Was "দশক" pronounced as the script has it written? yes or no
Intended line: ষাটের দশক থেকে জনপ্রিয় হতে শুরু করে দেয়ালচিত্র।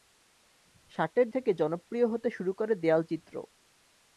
no